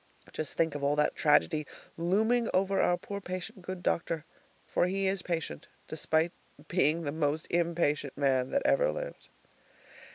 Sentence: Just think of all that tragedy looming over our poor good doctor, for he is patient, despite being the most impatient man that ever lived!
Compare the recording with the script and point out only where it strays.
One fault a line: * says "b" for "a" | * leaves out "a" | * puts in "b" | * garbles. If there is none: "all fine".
* puts in "patient"